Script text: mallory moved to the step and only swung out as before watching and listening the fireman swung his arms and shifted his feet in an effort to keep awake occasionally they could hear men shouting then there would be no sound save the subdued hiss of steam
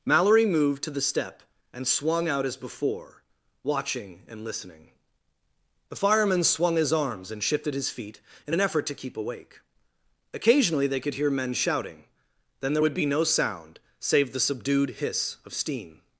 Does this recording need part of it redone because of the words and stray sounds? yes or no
yes